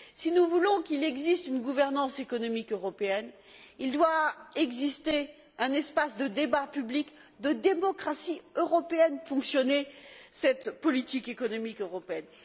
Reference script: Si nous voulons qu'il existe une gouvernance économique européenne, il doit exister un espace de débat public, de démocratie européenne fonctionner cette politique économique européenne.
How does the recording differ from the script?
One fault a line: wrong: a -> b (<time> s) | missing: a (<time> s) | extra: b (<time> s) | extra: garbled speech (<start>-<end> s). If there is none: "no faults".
no faults